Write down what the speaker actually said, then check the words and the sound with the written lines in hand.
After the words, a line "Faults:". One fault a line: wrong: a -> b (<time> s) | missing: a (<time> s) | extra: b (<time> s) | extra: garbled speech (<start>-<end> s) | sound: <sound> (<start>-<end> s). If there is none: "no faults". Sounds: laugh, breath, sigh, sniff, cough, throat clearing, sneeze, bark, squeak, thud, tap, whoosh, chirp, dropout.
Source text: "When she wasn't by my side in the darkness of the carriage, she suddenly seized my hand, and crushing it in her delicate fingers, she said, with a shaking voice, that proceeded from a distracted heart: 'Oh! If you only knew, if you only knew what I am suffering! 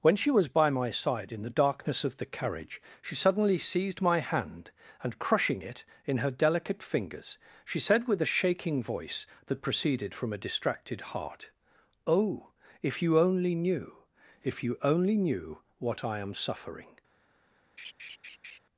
"When she was by my side in the darkness of the carriage, she suddenly seized my hand, and crushing it in her delicate fingers, she said, with a shaking voice, that proceeded from a distracted heart: 'Oh! If you only knew, if you only knew what I am suffering!
Faults:
wrong: wasn't -> was (0.3 s)
sound: laugh (17.8-18.6 s)